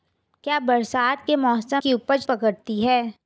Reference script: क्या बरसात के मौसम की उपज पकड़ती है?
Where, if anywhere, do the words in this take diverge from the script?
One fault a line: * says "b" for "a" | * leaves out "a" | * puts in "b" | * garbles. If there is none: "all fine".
all fine